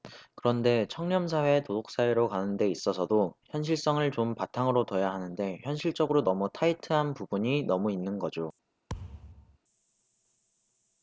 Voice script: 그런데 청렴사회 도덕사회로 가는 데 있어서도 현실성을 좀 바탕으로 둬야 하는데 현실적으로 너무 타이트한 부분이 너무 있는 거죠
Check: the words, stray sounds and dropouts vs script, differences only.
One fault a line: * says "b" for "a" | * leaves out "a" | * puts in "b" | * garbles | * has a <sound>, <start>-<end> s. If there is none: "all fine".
* has a thud, 8.9-9.6 s